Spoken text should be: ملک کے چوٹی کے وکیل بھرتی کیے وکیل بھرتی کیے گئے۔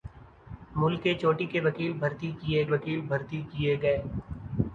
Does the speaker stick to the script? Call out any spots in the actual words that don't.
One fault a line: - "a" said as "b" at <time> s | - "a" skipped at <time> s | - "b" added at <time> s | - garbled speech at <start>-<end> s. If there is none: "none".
none